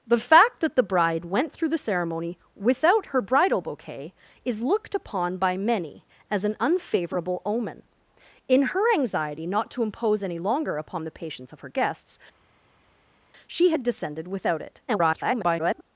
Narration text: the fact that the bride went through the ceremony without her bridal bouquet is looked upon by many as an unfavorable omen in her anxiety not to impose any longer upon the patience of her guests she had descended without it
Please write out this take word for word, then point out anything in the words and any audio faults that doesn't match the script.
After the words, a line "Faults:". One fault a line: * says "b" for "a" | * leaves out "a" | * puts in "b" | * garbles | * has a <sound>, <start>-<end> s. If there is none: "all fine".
the fact that the bride went through the ceremony without her bridal bouquet is looked upon by many as an unfavorable omen in her anxiety not to impose any longer upon the patience of her guests she had descended without it [garbled]
Faults:
* garbles